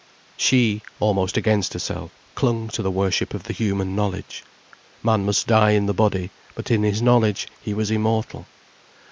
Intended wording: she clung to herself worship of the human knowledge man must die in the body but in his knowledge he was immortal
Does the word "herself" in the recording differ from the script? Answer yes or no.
yes